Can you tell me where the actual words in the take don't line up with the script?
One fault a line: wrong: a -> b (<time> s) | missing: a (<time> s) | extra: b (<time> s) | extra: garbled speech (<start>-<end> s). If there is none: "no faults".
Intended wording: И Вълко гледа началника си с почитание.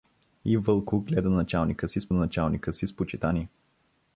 extra: началника си с (2.1 s)